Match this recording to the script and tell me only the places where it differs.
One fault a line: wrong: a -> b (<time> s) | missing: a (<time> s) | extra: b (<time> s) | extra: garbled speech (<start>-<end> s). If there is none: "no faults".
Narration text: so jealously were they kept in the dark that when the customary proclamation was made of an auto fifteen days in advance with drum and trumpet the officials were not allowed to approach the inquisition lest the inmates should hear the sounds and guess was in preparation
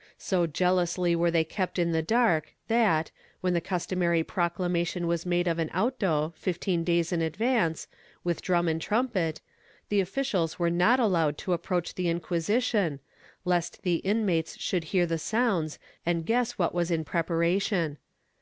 extra: what (16.5 s)